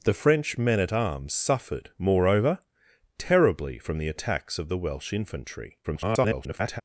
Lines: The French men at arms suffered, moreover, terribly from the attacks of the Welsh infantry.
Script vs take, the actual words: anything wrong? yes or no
yes